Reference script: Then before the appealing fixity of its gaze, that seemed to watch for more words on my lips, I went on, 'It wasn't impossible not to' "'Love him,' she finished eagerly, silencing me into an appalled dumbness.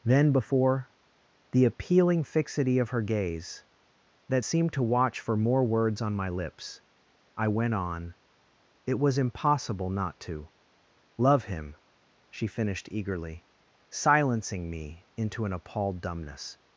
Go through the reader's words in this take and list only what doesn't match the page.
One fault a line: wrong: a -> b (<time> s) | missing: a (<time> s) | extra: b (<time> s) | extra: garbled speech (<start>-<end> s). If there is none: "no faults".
wrong: its -> her (2.9 s)
wrong: wasn't -> was (9.0 s)